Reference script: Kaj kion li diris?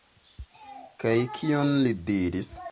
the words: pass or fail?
pass